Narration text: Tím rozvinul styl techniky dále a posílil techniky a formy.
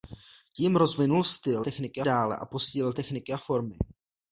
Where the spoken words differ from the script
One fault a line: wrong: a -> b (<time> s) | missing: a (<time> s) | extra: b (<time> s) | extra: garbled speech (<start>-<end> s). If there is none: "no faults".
no faults